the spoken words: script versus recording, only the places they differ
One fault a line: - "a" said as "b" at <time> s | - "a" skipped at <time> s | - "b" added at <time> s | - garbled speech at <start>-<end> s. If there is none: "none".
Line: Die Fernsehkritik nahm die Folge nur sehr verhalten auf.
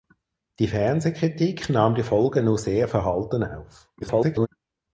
- garbled speech at 4.0-4.5 s